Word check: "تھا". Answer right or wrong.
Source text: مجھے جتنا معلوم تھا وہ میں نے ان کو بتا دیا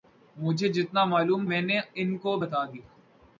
wrong